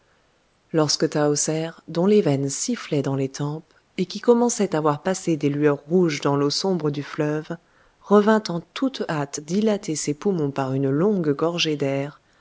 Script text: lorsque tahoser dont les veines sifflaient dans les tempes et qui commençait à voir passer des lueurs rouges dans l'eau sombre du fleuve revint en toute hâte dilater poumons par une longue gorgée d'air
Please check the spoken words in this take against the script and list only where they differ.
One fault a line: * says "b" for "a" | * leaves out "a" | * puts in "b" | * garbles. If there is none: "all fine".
* puts in "ses"